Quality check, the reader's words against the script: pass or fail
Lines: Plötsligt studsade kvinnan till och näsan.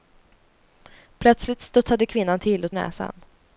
pass